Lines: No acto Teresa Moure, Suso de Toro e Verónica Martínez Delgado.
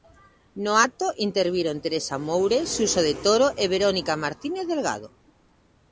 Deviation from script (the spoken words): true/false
true